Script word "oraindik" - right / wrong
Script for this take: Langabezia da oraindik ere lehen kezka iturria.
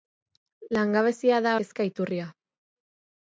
wrong